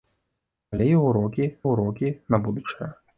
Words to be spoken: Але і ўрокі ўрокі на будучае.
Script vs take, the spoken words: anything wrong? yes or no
no